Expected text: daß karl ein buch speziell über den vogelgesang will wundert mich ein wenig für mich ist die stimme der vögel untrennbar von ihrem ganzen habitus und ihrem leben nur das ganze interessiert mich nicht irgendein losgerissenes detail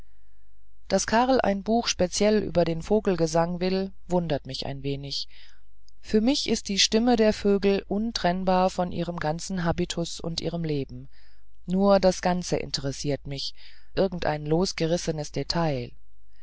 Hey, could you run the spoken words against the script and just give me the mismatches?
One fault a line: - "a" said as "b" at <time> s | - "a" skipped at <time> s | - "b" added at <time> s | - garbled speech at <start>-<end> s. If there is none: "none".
- "nicht" skipped at 13.5 s